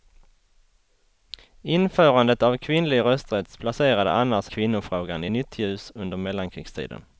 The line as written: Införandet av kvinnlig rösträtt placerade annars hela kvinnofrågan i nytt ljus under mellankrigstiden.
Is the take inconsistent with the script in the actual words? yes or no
yes